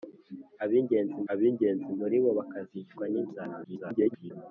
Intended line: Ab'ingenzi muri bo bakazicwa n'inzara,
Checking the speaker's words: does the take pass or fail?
fail